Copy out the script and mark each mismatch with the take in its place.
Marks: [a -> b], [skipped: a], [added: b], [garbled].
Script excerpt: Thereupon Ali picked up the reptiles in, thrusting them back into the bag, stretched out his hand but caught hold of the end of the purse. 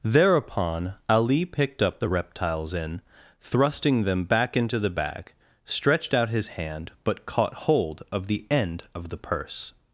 Thereupon Ali picked up the reptiles in, thrusting them back into the bag, stretched out his hand but caught hold of the end of the purse.